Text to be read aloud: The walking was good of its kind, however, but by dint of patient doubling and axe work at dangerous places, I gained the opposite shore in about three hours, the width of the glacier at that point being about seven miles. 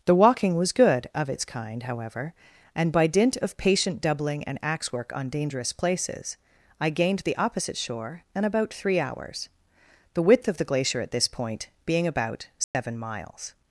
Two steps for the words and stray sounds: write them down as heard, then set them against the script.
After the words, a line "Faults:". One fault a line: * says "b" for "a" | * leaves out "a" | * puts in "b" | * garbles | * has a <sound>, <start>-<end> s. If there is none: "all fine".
The walking was good of its kind, however, and by dint of patient doubling and axe work on dangerous places, I gained the opposite shore in about three hours, the width of the glacier at this point being about seven miles.
Faults:
* says "and" for "but"
* says "on" for "at"
* says "this" for "that"
* has a dropout, 12.6-12.7 s